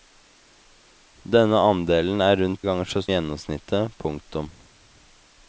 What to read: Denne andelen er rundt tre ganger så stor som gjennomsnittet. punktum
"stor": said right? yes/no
no